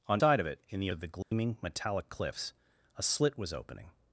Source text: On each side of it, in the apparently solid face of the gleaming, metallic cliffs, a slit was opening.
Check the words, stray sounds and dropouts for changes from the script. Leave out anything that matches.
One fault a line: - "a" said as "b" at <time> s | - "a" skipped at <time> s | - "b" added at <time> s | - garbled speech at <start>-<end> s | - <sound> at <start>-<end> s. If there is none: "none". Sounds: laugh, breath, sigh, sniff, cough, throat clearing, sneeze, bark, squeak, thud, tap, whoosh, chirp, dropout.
- "each" skipped at 0.2 s
- "apparently solid face" skipped at 0.9 s
- dropout at 1.2-1.3 s